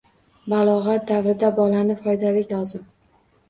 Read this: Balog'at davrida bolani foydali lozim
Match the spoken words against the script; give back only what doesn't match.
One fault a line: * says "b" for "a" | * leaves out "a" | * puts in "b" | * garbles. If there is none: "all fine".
all fine